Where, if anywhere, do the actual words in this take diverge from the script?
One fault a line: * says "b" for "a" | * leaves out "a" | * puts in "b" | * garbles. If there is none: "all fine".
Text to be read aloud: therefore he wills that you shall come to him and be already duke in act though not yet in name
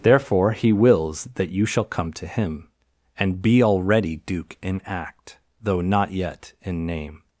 all fine